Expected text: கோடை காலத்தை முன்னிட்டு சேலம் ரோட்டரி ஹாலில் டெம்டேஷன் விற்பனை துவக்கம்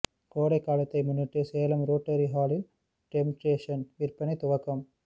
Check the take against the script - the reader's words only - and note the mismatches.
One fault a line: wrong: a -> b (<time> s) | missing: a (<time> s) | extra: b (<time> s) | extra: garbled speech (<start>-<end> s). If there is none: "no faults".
no faults